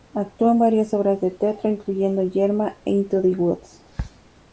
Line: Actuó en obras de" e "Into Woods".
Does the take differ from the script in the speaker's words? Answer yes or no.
yes